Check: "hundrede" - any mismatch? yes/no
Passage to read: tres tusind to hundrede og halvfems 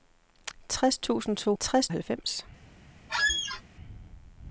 yes